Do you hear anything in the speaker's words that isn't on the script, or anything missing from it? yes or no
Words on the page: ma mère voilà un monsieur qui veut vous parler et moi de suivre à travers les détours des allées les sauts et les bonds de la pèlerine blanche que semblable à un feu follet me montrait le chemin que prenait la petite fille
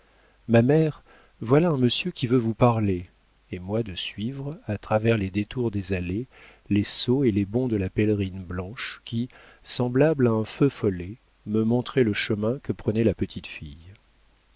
yes